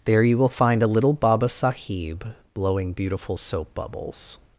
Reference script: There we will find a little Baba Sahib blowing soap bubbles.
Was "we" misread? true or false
true